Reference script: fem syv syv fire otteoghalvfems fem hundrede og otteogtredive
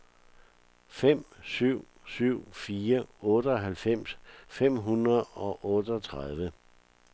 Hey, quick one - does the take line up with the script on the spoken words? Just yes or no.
yes